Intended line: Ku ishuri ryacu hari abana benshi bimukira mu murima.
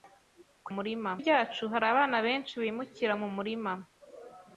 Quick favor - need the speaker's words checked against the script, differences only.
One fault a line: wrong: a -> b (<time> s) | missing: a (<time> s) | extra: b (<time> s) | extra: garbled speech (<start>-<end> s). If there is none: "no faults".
wrong: ishuri -> murima (0.8 s)